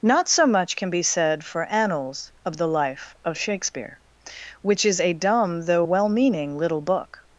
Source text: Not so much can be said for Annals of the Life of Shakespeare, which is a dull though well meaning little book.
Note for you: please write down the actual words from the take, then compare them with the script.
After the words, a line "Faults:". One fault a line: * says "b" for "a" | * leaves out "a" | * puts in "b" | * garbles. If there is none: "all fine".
Not so much can be said for Annals of the Life of Shakespeare, which is a dumb though well meaning little book.
Faults:
* says "dumb" for "dull"